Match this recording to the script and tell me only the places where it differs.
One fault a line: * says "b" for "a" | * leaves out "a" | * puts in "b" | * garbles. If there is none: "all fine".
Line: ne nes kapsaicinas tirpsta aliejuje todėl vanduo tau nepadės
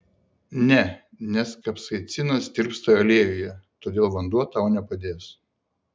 all fine